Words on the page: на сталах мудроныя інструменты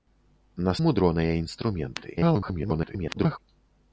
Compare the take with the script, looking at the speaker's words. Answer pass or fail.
fail